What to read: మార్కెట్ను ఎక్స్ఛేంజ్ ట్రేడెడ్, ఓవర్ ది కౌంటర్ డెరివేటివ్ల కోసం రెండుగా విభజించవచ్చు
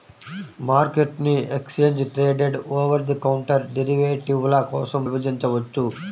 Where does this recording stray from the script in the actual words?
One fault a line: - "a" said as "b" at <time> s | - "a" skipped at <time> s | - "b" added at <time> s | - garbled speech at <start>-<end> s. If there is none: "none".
- "రెండుగా" skipped at 5.0 s